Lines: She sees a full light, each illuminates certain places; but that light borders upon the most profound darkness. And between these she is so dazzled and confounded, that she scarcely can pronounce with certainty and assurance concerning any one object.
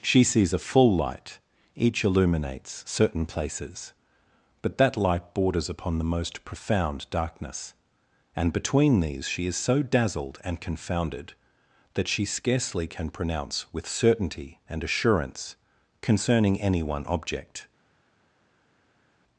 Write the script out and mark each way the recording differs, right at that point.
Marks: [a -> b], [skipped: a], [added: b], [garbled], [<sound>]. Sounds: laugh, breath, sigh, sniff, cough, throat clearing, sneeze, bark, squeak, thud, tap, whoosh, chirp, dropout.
She sees a full light, each illuminates certain places; but that light borders upon the most profound darkness. And between these she is so dazzled and confounded, that she scarcely can pronounce with certainty and assurance concerning any one object.